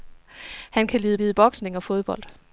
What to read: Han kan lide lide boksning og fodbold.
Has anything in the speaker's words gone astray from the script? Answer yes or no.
no